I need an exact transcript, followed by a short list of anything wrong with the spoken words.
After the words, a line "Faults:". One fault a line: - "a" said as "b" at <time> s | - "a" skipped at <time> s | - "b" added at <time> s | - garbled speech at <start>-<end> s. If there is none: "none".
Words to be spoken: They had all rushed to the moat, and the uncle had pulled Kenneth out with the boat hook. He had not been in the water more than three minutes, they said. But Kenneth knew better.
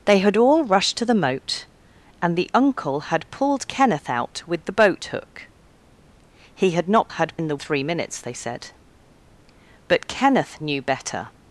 They had all rushed to the moat, and the uncle had pulled Kenneth out with the boat hook. He had not had in the three minutes, they said. But Kenneth knew better.
Faults:
- "been" said as "had" at 7.1 s
- "water more than" skipped at 7.6 s